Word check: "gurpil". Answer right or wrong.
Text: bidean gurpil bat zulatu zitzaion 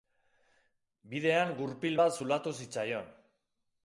right